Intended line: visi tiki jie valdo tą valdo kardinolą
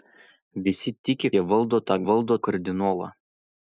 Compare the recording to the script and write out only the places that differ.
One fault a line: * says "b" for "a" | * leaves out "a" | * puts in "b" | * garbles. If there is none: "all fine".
all fine